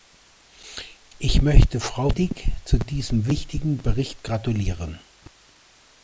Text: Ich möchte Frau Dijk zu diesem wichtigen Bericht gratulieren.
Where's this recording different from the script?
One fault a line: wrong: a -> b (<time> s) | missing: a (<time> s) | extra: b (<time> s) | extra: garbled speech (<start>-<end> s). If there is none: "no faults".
no faults